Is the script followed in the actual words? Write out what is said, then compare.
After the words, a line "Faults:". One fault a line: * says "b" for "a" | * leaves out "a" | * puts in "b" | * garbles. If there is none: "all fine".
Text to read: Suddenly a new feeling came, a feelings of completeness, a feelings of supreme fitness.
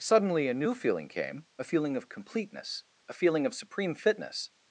Suddenly a new feeling came, a feeling of completeness, a feeling of supreme fitness.
Faults:
* says "feeling" for "feelings"
* says "feeling" for "feelings"